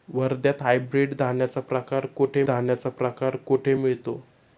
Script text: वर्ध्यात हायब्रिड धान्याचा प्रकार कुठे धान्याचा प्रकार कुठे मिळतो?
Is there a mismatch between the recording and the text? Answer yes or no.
no